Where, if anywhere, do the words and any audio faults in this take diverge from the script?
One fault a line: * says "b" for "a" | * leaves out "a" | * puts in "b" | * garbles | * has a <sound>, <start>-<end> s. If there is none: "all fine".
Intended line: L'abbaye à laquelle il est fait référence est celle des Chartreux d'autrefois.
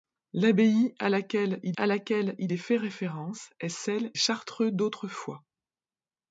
* puts in "à laquelle il"
* leaves out "des"